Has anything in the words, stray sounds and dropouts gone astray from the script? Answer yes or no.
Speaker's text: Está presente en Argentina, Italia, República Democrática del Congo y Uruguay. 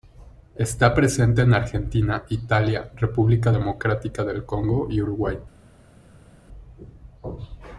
no